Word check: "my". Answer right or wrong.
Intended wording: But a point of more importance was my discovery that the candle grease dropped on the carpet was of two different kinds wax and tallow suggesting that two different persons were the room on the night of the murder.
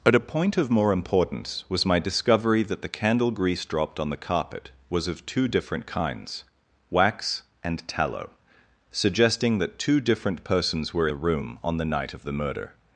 right